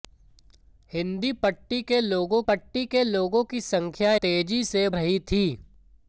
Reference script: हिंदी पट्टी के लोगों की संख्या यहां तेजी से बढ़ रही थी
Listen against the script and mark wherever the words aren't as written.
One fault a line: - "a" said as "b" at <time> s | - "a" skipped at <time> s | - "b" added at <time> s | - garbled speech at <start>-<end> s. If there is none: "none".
- "पट्टी के लोगों" added at 2.5 s
- "यहां" skipped at 4.1 s
- "बढ़" skipped at 4.9 s